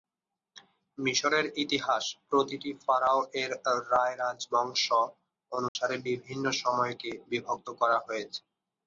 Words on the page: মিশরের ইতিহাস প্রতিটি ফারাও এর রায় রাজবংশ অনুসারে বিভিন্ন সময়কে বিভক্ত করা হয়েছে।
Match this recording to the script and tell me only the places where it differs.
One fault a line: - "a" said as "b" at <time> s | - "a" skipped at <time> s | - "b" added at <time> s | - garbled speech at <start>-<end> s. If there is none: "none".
none